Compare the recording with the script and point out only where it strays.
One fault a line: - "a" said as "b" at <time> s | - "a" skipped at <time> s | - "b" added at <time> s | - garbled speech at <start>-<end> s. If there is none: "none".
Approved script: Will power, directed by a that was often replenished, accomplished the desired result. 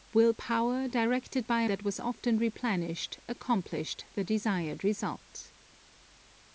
none